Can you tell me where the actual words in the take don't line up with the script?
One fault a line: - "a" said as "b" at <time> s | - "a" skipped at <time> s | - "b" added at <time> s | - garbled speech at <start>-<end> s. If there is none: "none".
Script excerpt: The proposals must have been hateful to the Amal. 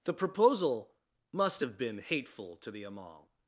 - "proposals" said as "proposal" at 0.1 s